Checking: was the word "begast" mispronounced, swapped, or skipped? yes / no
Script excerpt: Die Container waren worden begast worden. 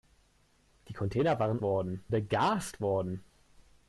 no